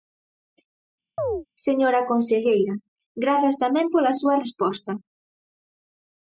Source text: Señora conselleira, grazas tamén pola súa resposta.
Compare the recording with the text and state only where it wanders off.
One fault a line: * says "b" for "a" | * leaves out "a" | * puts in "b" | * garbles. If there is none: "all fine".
all fine